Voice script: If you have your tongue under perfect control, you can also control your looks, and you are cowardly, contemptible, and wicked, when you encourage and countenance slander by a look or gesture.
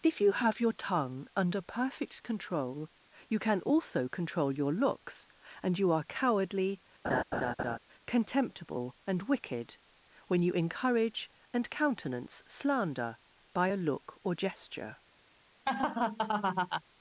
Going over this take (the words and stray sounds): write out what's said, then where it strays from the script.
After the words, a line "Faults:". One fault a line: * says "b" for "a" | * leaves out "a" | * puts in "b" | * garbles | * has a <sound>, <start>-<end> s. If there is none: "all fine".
If you have your tongue under perfect control, you can also control your looks, and you are cowardly, contemptible, and wicked, when you encourage and countenance slander by a look or gesture.
Faults:
* has a laugh, 7.0-7.8 s
* has a laugh, 15.7-16.8 s